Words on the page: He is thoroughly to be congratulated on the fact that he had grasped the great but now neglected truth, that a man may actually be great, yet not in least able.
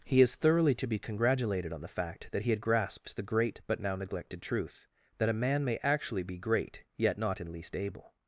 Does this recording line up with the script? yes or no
yes